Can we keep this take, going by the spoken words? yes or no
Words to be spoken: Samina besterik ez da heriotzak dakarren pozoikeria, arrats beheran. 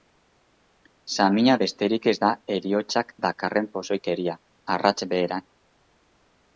yes